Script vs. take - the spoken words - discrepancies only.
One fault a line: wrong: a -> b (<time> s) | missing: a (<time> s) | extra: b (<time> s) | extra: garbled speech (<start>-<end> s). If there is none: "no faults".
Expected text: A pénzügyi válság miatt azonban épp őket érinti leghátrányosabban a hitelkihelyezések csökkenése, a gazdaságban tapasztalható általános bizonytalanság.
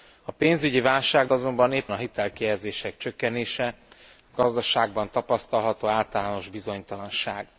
missing: miatt (1.3 s)
missing: őket érinti leghátrányosabban (1.9 s)